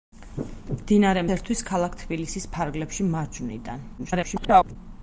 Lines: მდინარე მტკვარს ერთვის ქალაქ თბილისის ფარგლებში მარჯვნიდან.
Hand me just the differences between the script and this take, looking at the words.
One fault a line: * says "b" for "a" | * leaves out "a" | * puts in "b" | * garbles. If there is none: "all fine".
* leaves out "მტკვარს"
* garbles